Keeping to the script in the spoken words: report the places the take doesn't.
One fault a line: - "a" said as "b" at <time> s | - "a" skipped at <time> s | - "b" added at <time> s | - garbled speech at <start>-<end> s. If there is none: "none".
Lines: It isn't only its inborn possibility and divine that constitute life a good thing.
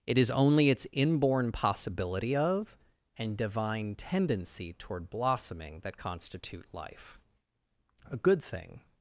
- "isn't" said as "is" at 0.2 s
- "of" added at 2.4 s
- "tendency toward blossoming" added at 3.9 s